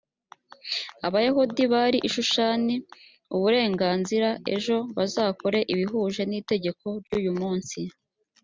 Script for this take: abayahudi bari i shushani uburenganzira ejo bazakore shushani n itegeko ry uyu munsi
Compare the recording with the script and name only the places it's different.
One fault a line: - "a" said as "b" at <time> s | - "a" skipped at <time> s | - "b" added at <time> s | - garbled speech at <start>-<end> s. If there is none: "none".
- "shushani" said as "ibihuje" at 5.7 s